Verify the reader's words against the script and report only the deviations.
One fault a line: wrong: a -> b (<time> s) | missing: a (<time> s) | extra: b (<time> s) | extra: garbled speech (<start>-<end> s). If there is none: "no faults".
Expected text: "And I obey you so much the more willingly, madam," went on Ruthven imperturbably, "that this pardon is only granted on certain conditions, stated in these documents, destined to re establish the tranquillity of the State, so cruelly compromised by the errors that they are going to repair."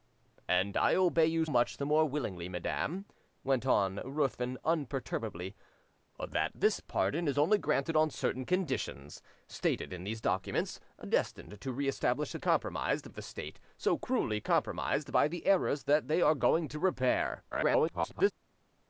missing: so (1.4 s)
wrong: tranquillity -> compromised (12.4 s)
extra: garbled speech (17.5-18.3 s)